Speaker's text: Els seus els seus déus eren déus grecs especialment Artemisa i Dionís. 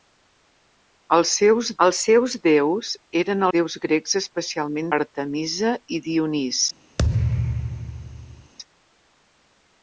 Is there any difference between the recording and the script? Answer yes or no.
no